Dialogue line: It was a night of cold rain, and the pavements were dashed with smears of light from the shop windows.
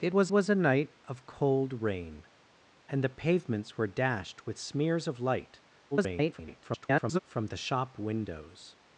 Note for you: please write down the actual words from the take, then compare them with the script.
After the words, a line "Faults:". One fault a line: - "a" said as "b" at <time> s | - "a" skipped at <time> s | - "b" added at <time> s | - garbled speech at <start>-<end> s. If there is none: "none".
It was was a night of cold rain, and the pavements were dashed with smears of light [garbled] from the shop windows.
Faults:
- "was" added at 0.3 s
- garbled speech at 5.9-7.2 s